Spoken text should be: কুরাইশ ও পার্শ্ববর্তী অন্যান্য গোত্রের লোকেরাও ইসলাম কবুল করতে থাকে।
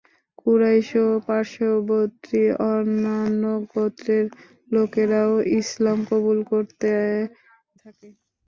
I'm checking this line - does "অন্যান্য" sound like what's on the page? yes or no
yes